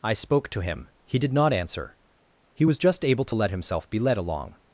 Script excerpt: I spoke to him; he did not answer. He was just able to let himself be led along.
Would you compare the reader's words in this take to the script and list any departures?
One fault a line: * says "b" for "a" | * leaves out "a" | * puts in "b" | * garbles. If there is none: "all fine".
all fine